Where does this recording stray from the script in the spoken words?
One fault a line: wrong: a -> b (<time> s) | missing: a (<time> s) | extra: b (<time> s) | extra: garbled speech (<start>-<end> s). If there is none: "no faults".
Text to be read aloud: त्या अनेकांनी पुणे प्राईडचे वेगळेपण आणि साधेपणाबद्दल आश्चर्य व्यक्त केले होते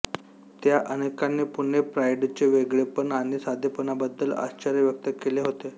no faults